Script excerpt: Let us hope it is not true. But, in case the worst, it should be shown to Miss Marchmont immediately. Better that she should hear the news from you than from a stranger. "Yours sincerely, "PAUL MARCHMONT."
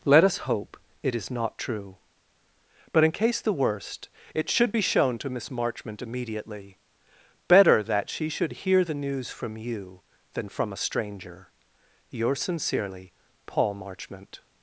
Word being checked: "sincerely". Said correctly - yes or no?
yes